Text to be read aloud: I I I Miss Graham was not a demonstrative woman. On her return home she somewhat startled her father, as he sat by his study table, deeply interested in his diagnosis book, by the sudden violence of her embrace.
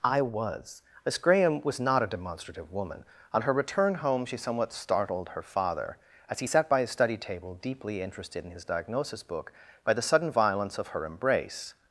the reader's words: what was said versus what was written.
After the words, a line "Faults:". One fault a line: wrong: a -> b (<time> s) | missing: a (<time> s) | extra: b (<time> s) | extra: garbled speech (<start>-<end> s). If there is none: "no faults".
I was Miss Graham was not a demonstrative woman. On her return home she somewhat startled her father, as he sat by his study table, deeply interested in his diagnosis book, by the sudden violence of her embrace.
Faults:
wrong: I I -> was (0.2 s)